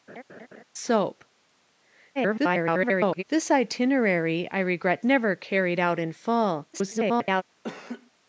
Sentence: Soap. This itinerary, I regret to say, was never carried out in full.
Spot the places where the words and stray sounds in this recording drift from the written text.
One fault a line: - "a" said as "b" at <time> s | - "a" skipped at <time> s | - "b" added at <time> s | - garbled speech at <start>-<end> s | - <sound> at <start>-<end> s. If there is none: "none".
- laugh at 0.1-0.6 s
- garbled speech at 2.2-3.2 s
- "to say was" skipped at 5.0 s
- garbled speech at 6.7-7.4 s
- laugh at 7.6-8.1 s